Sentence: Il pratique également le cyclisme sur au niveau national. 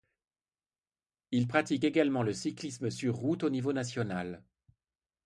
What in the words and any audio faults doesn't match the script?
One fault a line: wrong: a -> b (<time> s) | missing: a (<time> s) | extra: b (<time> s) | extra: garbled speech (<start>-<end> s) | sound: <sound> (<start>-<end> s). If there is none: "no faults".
extra: route (3.1 s)